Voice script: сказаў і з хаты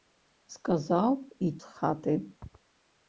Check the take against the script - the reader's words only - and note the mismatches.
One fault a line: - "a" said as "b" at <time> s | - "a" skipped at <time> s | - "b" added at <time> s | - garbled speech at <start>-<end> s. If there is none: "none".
none